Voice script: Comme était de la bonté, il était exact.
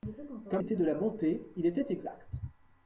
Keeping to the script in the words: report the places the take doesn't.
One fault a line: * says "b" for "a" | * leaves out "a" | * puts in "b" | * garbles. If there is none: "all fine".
all fine